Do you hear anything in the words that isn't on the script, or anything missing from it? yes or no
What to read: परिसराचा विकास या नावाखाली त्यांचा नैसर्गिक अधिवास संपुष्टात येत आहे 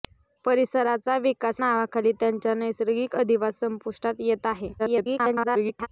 yes